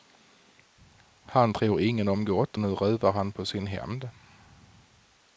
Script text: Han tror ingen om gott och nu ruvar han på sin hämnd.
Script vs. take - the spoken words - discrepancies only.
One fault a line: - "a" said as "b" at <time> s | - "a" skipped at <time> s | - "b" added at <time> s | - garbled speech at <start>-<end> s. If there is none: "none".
- "och" skipped at 2.6 s